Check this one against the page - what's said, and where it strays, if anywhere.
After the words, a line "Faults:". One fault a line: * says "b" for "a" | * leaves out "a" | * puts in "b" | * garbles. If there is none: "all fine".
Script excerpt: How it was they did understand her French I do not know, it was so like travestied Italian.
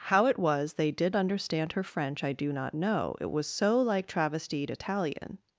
How it was they did understand her French I do not know, it was so like travestied Italian.
Faults:
all fine